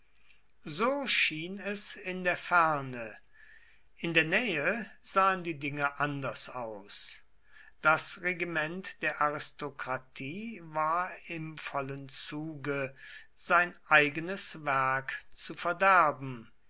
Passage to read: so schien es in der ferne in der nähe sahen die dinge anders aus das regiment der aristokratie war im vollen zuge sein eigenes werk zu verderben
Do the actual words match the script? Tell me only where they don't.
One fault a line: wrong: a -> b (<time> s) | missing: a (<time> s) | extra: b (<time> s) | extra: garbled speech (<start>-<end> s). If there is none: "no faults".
no faults